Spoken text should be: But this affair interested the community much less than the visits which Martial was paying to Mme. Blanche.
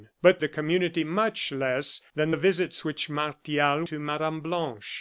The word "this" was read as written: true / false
false